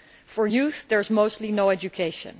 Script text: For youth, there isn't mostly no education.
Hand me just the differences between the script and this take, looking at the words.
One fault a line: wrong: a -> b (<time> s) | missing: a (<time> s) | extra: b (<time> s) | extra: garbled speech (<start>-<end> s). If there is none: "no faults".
wrong: isn't -> is (1.0 s)